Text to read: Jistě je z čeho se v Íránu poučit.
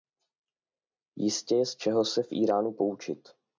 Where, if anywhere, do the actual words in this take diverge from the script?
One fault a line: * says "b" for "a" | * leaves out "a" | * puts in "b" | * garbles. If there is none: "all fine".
all fine